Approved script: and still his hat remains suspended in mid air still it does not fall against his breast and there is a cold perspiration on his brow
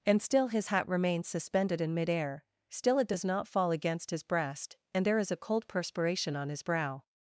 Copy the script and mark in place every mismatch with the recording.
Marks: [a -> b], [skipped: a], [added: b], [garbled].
and still his hat remains suspended in mid air still it does not fall against his breast and there is a cold perspiration on his brow